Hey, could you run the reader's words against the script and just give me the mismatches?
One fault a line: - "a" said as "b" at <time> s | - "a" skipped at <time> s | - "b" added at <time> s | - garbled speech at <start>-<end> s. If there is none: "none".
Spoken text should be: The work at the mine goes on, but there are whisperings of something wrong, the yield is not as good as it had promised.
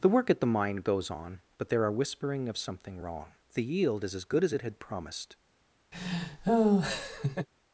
- "whisperings" said as "whispering" at 1.9 s
- "not" skipped at 4.1 s